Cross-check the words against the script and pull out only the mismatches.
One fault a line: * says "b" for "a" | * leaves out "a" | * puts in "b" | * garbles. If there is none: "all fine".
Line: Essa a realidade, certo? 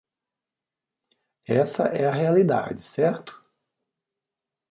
* puts in "é"